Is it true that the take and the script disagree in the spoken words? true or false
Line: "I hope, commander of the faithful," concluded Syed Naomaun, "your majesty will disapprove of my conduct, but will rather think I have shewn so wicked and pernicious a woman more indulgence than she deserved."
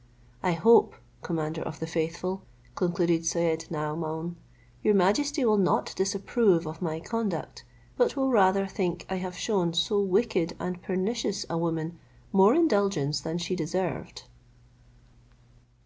true